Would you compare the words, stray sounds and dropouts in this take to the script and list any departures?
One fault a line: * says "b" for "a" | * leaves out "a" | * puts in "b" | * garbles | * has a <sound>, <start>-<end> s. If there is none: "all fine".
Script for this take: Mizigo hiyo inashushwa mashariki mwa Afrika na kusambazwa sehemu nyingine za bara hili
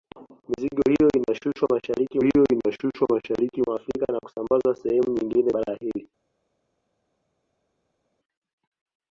* puts in "hiyo inashushwa mashariki"
* leaves out "za"